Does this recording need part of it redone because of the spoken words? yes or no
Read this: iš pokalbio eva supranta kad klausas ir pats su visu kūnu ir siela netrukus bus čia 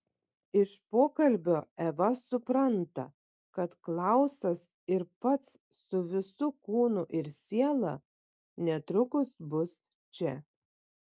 no